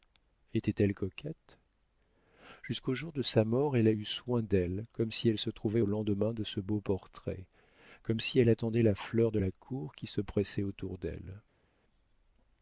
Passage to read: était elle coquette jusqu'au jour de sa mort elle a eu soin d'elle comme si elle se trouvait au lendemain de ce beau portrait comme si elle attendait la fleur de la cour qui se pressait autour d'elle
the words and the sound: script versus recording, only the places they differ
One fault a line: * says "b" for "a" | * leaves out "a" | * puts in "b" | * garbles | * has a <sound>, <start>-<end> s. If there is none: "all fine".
all fine